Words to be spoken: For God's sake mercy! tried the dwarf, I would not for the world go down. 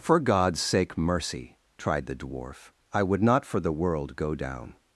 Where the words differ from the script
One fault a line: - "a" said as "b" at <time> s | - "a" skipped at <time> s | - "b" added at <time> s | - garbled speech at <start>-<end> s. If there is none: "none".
none